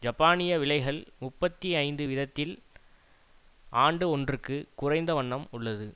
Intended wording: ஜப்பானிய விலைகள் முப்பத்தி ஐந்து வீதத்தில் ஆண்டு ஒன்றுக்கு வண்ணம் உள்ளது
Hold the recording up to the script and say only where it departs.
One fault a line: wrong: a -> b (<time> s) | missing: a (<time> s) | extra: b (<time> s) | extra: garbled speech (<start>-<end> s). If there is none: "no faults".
extra: குறைந்த (4.7 s)